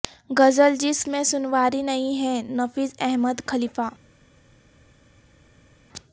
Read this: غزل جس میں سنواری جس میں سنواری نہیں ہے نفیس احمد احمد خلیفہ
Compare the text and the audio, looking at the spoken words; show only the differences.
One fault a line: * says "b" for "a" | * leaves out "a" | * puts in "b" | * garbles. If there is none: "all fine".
* leaves out "جس میں سنواری"
* leaves out "احمد"